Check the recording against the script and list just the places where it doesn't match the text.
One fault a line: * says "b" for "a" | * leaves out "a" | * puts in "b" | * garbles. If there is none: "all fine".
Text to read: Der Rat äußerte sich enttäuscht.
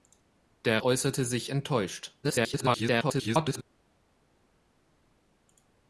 * leaves out "Rat"
* garbles